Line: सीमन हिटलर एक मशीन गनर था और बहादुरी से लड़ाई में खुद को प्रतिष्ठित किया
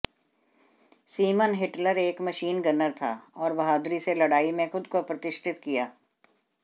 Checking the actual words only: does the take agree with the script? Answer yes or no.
yes